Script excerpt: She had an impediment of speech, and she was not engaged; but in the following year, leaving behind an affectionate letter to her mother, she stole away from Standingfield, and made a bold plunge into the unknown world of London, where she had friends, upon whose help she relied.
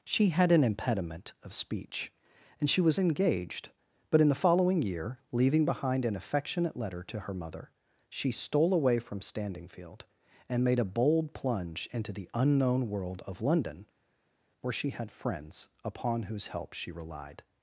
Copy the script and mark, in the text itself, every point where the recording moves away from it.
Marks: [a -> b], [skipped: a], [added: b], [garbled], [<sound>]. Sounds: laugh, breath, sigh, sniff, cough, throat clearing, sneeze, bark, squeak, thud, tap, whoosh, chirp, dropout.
She had an impediment of speech, and she was [skipped: not] engaged; but in the following year, leaving behind an affectionate letter to her mother, she stole away from Standingfield, and made a bold plunge into the unknown world of London, where she had friends, upon whose help she relied.